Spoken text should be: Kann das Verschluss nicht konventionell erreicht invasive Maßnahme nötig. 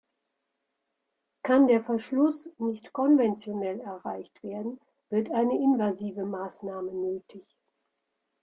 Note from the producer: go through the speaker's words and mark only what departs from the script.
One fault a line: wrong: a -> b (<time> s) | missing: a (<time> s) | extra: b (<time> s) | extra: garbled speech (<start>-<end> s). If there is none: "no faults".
wrong: das -> der (1.7 s)
extra: werden wird eine (4.4 s)